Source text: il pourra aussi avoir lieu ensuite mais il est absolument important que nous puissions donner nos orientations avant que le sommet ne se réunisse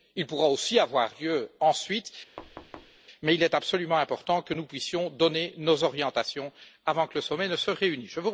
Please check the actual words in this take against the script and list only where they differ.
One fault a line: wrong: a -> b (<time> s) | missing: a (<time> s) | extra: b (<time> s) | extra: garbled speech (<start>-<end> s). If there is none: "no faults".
no faults